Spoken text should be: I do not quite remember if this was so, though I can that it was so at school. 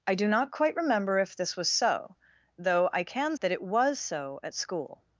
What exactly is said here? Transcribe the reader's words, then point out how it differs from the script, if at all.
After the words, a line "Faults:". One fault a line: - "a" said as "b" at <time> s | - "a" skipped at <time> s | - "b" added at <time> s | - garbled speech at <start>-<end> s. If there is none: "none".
I do not quite remember if this was so, though I can that it was so at school.
Faults:
none